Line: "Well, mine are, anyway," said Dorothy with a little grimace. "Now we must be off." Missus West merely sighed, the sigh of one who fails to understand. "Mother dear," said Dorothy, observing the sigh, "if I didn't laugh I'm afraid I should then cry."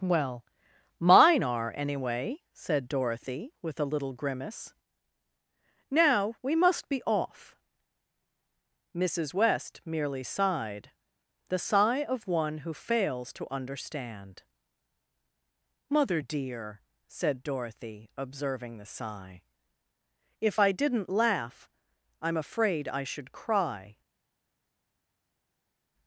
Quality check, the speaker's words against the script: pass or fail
fail